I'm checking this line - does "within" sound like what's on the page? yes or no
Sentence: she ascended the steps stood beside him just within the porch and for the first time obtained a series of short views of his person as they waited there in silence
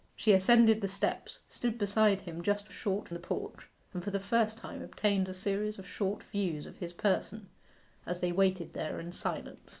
no